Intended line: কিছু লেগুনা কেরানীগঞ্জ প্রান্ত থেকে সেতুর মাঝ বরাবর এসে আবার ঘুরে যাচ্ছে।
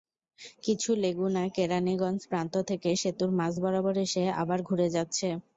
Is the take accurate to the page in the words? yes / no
yes